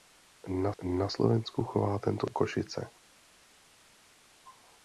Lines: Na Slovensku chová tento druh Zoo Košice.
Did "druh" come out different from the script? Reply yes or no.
yes